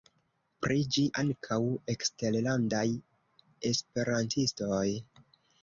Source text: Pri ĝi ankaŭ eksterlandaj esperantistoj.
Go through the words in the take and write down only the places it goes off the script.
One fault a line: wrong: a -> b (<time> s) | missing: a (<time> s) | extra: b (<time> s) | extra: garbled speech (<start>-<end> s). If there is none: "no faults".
no faults